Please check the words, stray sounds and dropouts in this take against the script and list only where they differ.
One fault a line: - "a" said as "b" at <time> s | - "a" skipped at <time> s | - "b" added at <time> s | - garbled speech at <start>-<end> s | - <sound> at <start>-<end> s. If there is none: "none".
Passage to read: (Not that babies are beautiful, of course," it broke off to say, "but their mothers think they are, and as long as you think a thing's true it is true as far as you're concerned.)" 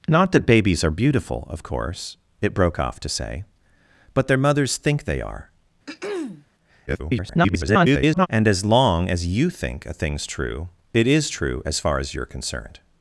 - throat clearing at 5.9-6.5 s
- garbled speech at 6.9-8.3 s